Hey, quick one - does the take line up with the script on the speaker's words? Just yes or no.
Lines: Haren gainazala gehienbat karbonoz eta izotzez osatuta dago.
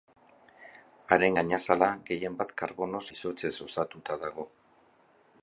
no